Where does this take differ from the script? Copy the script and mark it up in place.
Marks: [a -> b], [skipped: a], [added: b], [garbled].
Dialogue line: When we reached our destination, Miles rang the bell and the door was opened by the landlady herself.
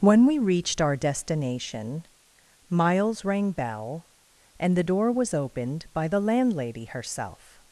When we reached our destination, Miles rang [skipped: the] bell and the door was opened by the landlady herself.